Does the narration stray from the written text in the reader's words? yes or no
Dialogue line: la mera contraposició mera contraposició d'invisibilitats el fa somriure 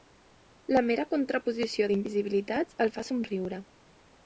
yes